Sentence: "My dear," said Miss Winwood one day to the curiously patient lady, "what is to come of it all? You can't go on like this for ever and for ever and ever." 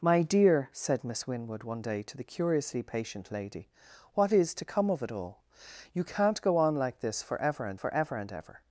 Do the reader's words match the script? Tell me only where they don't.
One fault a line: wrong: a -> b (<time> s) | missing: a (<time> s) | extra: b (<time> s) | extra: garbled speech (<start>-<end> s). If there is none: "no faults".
no faults